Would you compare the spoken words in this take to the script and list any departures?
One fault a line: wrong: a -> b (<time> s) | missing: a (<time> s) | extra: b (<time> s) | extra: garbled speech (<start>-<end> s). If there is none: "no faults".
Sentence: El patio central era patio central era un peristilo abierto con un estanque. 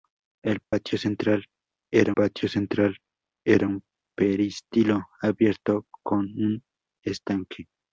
no faults